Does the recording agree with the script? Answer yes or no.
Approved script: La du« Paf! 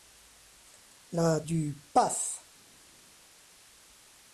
yes